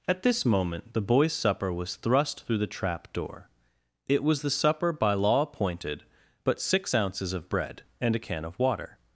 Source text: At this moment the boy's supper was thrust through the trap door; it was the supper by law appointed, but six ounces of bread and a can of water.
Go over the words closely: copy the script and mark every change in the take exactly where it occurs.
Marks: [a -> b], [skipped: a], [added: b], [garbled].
At this moment the boy's supper was thrust through the trap door; it was the supper by law appointed, but six ounces of bread and a can of water.